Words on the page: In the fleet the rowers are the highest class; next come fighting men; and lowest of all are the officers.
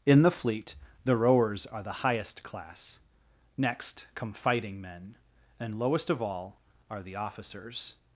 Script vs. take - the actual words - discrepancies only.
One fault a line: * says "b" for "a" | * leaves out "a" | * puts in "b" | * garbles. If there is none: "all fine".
all fine